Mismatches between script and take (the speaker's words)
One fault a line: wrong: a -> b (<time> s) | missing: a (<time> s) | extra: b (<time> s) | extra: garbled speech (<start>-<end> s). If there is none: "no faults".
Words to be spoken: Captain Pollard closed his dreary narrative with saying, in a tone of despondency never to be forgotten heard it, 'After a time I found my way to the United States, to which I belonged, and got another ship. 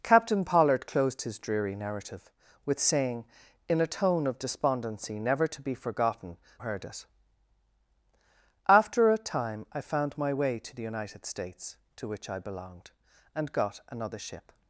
no faults